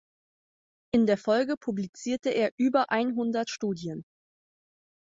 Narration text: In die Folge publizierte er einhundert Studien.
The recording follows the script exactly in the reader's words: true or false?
false